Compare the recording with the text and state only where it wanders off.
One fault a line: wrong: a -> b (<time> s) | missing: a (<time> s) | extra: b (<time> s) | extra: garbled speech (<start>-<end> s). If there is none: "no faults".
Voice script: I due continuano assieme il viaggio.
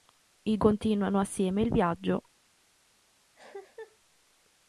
missing: due (0.6 s)